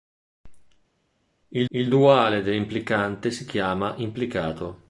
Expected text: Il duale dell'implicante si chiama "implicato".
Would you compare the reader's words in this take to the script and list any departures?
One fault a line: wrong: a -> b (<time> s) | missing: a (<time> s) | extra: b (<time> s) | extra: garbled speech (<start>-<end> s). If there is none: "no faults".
extra: il (1.7 s)